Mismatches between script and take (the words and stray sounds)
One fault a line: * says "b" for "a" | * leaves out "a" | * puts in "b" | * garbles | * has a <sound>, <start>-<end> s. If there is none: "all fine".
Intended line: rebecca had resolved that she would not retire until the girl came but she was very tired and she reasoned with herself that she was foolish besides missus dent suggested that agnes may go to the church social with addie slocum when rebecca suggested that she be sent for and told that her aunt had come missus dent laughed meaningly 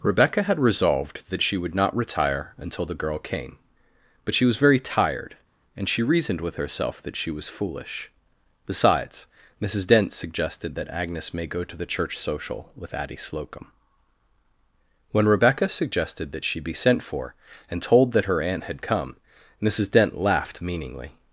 all fine